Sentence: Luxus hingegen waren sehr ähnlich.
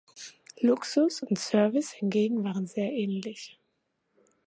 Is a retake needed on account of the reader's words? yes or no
yes